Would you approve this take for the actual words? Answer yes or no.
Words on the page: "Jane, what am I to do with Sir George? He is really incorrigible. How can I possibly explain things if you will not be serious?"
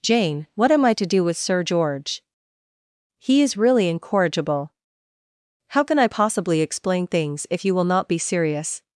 yes